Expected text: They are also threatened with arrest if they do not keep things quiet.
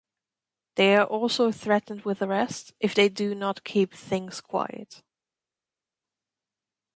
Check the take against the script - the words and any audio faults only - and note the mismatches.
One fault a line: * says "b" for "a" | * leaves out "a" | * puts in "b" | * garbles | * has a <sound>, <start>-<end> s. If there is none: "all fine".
all fine